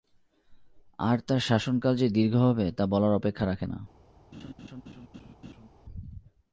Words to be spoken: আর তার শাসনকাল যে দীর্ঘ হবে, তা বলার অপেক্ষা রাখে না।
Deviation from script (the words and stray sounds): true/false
true